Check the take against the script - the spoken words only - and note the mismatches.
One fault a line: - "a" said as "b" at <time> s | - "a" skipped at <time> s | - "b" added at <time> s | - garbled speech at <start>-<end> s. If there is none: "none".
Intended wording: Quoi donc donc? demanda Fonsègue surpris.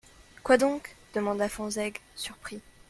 - "donc" skipped at 0.9 s